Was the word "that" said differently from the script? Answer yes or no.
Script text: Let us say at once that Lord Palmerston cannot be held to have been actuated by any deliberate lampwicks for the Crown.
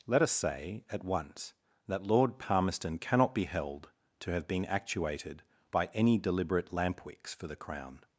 no